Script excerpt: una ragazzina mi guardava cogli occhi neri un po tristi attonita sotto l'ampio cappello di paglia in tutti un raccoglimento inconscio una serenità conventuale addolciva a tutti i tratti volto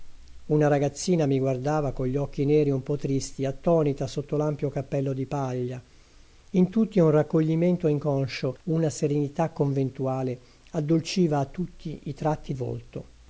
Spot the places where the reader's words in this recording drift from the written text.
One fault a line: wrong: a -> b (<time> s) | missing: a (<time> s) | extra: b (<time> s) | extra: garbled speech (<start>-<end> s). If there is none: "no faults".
no faults